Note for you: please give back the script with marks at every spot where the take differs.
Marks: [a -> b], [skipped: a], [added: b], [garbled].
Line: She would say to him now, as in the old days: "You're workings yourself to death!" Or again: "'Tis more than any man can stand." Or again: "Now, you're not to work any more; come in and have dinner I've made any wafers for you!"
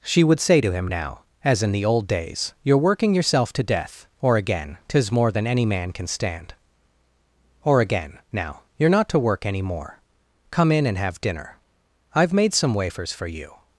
She would say to him now, as in the old days: "You're [workings -> working] yourself to death!" Or again: "'Tis more than any man can stand." Or again: "Now, you're not to work any more; come in and have dinner I've made [any -> some] wafers for you!"